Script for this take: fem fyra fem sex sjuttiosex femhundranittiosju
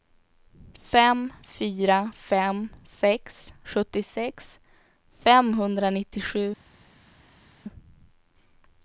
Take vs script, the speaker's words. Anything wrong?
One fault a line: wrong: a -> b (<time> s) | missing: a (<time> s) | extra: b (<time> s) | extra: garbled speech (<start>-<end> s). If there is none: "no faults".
no faults